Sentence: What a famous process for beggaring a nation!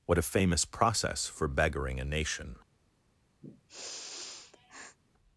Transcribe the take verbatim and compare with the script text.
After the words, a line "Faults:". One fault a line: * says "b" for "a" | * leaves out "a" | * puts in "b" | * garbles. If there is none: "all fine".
What a famous process for beggaring a nation!
Faults:
all fine